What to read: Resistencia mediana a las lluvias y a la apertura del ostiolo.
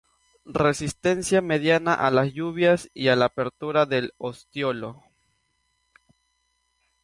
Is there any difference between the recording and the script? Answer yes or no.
no